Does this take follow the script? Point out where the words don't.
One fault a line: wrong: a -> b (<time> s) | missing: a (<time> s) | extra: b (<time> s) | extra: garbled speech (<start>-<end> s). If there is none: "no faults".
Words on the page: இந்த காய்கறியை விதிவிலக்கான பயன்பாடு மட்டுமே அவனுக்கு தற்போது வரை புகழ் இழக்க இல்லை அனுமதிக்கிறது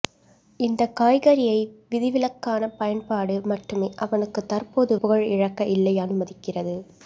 missing: வரை (5.0 s)